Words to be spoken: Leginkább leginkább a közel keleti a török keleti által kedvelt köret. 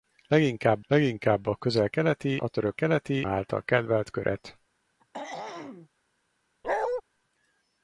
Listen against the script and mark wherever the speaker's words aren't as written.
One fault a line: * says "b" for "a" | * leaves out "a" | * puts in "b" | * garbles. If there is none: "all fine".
all fine